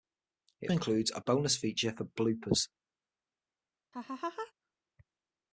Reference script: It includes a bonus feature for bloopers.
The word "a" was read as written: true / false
true